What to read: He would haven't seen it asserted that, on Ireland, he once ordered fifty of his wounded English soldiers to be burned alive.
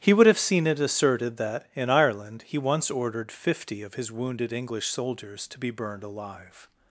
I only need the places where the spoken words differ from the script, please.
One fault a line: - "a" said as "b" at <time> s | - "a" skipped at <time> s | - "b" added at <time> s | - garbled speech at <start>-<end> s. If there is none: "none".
- "haven't" said as "have" at 0.2 s
- "on" said as "in" at 1.8 s